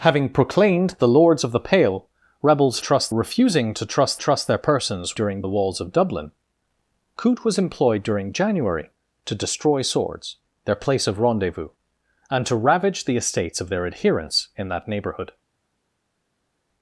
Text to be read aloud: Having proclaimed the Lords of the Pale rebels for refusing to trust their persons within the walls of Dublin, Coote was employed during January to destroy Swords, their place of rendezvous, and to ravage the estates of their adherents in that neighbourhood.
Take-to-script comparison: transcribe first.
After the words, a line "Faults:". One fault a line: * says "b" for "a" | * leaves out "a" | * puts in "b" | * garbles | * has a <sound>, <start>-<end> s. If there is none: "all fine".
Having proclaimed the Lords of the Pale rebels trust refusing to trust trust their persons during the walls of Dublin, Coote was employed during January to destroy Swords, their place of rendezvous, and to ravage the estates of their adherents in that neighbourhood.
Faults:
* says "trust" for "for"
* puts in "trust"
* says "during" for "within"